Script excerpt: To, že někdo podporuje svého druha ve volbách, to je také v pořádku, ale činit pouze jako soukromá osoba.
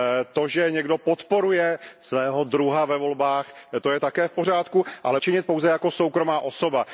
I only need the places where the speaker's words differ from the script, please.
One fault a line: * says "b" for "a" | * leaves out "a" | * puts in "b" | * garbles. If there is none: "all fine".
all fine